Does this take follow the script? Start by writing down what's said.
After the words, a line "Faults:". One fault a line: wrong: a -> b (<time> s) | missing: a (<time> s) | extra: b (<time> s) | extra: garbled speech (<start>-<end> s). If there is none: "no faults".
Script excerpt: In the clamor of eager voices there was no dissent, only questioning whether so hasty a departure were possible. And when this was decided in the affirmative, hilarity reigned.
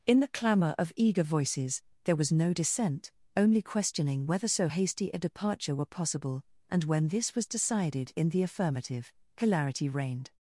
In the clamor of eager voices there was no dissent, only questioning whether so hasty a departure were possible. And when this was decided in the affirmative, hilarity reigned.
Faults:
no faults